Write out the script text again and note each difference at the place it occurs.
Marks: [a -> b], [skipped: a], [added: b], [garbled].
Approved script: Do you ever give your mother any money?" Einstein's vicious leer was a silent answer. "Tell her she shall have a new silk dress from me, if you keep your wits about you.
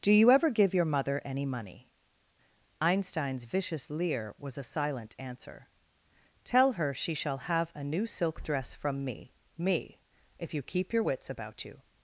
Do you ever give your mother any money?" Einstein's vicious leer was a silent answer. "Tell her she shall have a new silk dress from me, [added: me] if you keep your wits about you.